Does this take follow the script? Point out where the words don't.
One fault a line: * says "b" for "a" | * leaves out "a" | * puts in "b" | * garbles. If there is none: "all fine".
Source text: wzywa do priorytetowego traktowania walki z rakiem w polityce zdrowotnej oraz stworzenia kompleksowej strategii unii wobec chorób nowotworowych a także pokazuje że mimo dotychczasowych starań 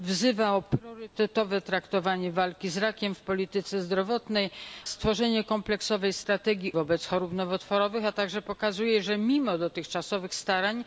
* leaves out "oraz"
* leaves out "unii"